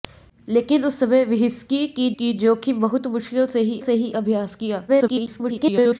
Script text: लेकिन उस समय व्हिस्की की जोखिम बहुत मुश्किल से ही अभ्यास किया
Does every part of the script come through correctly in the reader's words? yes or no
no